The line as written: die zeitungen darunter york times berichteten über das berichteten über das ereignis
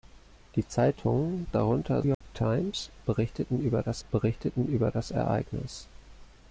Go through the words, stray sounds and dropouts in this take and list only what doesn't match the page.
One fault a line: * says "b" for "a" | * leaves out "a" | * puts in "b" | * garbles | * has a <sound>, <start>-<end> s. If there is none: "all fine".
* has a dropout, 2.1-2.2 s